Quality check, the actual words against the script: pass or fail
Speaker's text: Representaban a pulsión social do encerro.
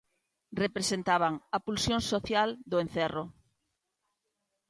pass